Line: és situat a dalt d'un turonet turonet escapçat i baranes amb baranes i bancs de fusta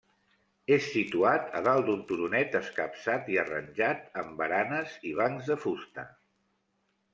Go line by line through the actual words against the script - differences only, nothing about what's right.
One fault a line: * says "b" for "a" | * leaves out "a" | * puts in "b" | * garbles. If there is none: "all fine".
* leaves out "turonet"
* says "arranjat" for "baranes"